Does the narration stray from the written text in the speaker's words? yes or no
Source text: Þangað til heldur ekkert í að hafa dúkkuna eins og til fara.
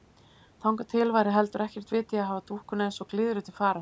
yes